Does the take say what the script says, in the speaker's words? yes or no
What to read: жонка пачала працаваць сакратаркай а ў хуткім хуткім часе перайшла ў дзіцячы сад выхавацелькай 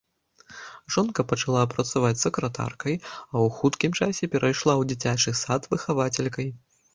no